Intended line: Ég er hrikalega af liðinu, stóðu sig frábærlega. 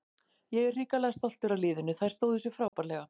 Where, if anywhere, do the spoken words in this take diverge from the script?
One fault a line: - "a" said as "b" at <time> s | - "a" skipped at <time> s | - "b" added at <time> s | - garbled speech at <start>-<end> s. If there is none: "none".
- "stoltur" added at 1.2 s
- "þær" added at 2.0 s